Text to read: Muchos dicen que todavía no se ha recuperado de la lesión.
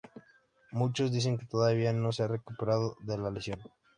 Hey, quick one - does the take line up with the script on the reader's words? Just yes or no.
yes